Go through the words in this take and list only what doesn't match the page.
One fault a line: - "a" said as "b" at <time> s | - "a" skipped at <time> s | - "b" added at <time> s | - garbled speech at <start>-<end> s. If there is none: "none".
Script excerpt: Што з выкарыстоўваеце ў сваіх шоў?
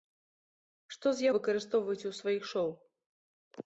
none